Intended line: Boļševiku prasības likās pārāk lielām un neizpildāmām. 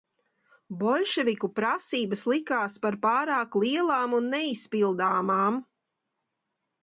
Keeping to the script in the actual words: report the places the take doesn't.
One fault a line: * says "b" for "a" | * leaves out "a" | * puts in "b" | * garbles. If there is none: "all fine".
* puts in "par"